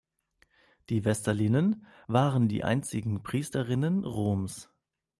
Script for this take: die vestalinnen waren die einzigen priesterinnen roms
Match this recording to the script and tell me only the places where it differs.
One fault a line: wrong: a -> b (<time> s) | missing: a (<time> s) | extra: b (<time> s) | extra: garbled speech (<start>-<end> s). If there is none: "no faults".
no faults